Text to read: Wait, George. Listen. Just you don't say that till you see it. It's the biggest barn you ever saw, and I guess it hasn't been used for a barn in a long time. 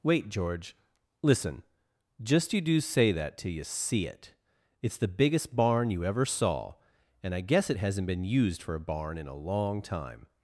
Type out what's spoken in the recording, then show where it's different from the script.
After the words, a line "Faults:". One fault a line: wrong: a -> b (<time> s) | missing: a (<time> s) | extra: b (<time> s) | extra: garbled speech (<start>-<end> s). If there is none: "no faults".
Wait, George. Listen. Just you do say that till you see it. It's the biggest barn you ever saw, and I guess it hasn't been used for a barn in a long time.
Faults:
wrong: don't -> do (2.6 s)